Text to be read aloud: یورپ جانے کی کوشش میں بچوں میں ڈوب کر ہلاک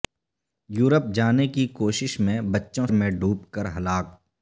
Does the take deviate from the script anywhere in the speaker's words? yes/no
no